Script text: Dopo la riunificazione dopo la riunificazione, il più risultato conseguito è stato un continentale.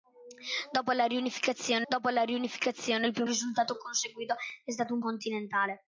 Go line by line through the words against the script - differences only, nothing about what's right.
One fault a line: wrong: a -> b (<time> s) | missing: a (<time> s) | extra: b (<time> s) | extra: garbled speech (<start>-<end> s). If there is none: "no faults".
no faults